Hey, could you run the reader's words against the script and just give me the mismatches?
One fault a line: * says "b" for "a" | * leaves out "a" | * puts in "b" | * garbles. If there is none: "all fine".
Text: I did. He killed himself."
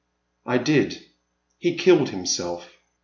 all fine